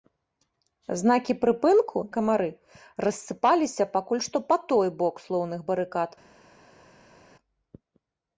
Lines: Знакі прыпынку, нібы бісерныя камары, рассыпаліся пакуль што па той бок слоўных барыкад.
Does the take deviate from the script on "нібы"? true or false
true